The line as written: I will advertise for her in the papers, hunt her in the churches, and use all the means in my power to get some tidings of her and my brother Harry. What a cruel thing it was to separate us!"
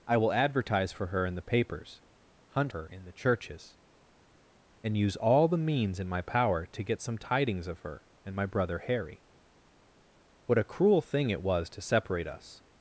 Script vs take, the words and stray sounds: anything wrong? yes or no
no